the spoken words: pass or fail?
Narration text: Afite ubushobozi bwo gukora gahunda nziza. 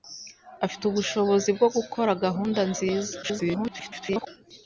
fail